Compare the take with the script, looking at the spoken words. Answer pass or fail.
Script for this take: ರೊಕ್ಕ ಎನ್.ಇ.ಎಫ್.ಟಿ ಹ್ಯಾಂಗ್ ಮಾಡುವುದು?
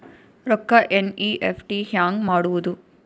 pass